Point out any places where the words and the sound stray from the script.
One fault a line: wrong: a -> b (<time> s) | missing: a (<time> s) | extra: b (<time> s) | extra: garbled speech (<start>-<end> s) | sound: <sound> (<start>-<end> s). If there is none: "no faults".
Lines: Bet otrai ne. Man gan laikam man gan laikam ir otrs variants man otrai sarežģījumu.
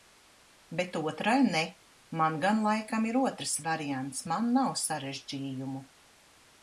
missing: man gan laikam (3.0 s)
wrong: otrai -> nav (4.6 s)